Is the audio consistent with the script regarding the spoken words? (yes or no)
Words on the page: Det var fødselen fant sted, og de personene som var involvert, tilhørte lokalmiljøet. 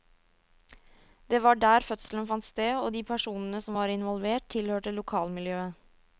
no